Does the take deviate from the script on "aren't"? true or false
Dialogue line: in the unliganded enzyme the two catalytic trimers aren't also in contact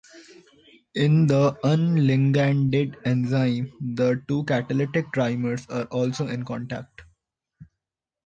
true